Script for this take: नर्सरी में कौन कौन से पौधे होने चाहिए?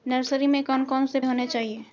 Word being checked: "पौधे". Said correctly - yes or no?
no